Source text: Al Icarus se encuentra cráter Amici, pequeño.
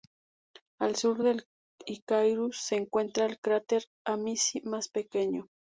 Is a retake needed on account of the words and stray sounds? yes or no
yes